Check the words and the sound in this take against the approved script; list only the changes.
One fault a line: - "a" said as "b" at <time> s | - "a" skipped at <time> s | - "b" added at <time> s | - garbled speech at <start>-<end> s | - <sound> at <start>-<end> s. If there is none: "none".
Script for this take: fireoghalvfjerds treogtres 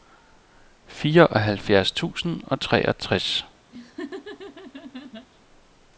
- "tusind og" added at 1.9 s
- laugh at 3.7-5.3 s